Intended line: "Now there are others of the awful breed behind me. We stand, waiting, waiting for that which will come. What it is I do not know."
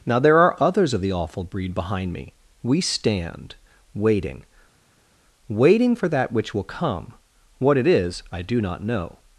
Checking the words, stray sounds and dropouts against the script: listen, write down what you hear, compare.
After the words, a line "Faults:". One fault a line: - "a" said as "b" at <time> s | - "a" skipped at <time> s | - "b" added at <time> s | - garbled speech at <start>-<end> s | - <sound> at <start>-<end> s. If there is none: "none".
"Now there are others of the awful breed behind me. We stand, waiting, waiting for that which will come. What it is I do not know."
Faults:
none